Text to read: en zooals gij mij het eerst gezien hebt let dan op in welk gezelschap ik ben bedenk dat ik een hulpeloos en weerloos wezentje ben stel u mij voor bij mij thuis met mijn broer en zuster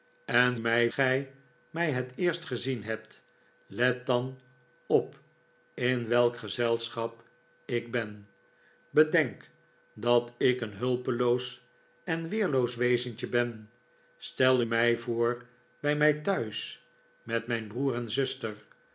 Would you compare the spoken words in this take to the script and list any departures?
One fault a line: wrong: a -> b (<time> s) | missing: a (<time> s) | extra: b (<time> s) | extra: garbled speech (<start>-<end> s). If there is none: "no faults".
wrong: zooals -> mij (0.6 s)
missing: u (14.6 s)